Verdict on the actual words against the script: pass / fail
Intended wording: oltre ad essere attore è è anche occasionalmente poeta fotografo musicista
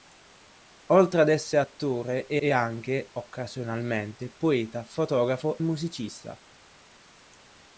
pass